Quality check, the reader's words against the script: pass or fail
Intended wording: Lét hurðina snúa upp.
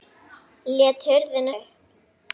fail